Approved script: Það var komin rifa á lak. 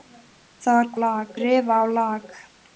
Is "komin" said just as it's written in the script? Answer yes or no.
no